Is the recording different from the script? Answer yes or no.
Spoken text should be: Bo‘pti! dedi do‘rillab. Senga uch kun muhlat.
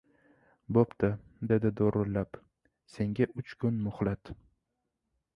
no